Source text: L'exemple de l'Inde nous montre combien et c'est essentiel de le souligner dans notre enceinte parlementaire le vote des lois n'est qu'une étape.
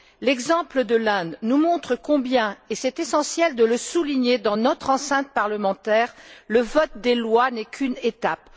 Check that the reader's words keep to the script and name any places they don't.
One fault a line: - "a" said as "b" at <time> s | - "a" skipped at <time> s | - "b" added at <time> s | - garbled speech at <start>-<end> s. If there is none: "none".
none